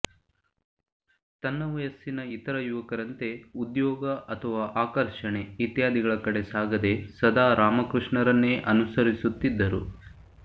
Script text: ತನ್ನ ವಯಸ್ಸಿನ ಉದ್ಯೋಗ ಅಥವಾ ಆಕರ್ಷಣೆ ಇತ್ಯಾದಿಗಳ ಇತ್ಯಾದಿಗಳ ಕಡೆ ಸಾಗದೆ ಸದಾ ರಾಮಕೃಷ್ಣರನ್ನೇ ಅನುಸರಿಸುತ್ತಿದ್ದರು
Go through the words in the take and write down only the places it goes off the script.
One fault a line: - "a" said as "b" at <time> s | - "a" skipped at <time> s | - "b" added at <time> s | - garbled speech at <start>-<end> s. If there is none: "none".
- "ಇತರ ಯುವಕರಂತೆ" added at 2.4 s
- "ಇತ್ಯಾದಿಗಳ" skipped at 6.1 s